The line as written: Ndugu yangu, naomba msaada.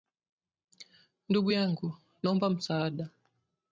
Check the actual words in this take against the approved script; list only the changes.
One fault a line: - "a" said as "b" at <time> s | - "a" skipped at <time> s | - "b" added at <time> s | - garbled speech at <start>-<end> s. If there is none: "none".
none